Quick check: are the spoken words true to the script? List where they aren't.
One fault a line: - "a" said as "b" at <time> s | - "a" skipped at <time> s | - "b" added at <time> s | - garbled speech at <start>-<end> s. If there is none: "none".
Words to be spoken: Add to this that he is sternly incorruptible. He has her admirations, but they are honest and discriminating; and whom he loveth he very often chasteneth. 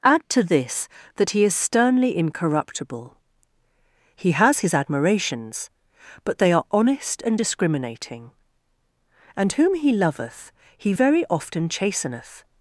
- "her" said as "his" at 4.6 s